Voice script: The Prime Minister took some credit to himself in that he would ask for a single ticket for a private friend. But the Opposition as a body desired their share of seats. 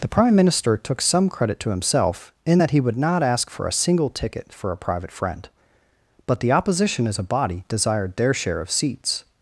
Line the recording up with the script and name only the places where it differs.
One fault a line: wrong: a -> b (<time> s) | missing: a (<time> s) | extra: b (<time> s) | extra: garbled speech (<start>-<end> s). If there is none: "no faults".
extra: not (3.0 s)